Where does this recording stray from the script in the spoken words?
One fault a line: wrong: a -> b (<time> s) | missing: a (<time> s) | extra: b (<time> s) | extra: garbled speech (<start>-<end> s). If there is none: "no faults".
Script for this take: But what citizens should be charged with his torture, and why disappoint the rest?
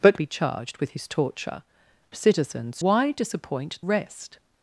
missing: what citizens should (0.2 s)
wrong: and -> citizens (2.1 s)
missing: the (3.8 s)